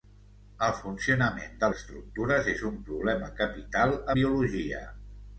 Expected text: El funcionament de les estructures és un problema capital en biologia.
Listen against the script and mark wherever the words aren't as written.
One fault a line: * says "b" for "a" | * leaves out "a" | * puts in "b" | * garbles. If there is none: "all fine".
* leaves out "les"
* leaves out "en"